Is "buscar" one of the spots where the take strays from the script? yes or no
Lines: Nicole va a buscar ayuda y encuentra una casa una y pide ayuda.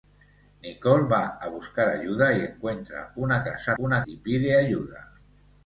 no